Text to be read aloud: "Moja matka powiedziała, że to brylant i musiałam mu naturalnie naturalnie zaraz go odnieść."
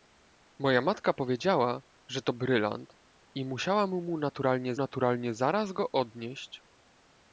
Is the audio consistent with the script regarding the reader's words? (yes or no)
yes